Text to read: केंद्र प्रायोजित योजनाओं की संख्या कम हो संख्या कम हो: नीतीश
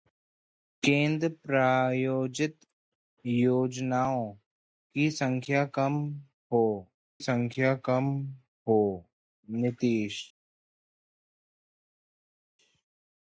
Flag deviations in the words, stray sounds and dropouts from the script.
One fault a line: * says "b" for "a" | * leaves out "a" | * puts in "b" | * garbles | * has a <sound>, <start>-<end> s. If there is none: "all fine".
all fine